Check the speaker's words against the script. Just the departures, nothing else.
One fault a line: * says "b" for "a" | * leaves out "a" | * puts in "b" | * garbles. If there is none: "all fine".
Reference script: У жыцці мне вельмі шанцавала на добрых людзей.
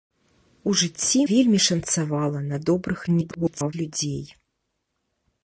* leaves out "мне"
* garbles